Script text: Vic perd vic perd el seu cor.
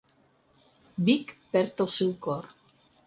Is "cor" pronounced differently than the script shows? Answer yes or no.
no